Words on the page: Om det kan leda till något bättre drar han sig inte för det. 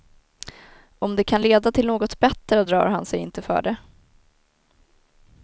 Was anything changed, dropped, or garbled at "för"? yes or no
no